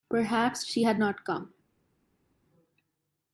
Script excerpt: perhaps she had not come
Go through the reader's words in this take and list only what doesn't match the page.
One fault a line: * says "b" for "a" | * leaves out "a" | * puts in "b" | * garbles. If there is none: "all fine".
all fine